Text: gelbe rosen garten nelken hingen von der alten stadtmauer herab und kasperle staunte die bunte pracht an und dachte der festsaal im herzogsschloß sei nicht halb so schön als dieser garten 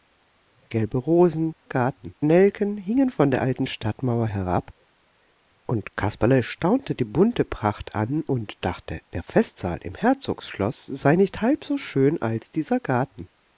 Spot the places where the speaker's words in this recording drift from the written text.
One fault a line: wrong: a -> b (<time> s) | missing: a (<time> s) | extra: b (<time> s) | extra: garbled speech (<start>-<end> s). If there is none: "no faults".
no faults